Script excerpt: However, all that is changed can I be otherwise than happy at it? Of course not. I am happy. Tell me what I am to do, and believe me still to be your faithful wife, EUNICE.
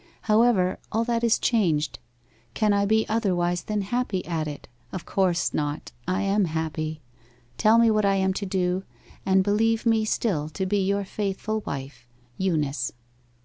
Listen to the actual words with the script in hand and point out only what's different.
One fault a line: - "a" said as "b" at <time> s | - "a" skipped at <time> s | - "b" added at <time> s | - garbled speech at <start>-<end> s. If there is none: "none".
none